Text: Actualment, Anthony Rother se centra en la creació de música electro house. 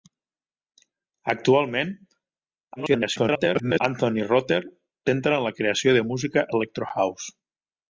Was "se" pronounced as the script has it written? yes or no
no